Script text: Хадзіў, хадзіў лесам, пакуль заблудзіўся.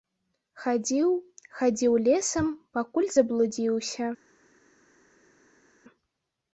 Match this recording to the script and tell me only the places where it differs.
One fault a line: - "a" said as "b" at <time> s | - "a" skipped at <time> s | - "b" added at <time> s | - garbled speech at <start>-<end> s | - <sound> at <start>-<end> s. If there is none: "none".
none